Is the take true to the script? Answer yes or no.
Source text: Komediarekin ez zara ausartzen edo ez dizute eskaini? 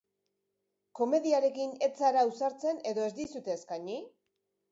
yes